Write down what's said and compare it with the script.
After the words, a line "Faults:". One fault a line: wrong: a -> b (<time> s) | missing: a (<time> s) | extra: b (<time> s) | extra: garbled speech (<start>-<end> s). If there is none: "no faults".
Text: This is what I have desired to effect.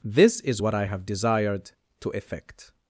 This is what I have desired to effect.
Faults:
no faults